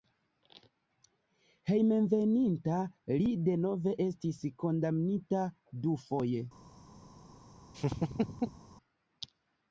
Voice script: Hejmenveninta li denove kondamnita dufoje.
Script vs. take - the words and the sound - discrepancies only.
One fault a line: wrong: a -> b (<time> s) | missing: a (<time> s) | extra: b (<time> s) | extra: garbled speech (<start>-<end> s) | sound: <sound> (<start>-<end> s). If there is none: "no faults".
extra: estis (4.0 s)
sound: laugh (7.7-8.6 s)